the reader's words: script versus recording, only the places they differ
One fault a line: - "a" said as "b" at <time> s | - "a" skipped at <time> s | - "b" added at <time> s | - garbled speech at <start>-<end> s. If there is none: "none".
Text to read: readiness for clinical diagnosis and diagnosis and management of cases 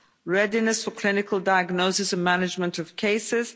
- "diagnosis and" skipped at 2.2 s